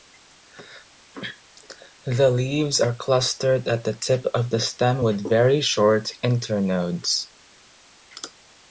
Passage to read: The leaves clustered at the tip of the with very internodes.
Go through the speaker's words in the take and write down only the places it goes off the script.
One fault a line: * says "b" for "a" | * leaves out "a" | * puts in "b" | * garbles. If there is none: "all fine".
* puts in "are"
* puts in "stem"
* puts in "short"